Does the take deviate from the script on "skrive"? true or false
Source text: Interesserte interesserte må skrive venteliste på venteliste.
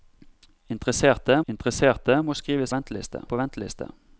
false